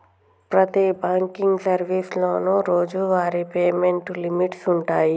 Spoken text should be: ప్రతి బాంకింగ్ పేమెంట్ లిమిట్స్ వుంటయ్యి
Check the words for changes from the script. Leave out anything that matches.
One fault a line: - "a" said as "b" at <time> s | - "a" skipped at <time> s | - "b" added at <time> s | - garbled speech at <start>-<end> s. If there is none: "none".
- "సర్వీసులోనూ రోజువారీ" added at 1.6 s